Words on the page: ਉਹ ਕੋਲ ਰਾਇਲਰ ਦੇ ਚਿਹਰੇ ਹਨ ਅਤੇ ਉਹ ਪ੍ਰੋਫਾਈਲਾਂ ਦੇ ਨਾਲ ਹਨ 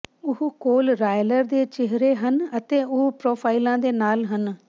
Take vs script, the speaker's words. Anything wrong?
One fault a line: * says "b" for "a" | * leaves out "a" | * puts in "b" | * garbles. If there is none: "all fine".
all fine